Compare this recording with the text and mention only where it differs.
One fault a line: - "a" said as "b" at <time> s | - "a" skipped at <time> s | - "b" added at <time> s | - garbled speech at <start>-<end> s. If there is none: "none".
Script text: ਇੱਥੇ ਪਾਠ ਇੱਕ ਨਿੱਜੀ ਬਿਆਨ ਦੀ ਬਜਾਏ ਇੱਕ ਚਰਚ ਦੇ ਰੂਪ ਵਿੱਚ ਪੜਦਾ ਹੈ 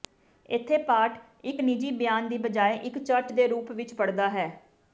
none